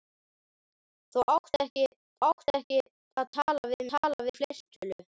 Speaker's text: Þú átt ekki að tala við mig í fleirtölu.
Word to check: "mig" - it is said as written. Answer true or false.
false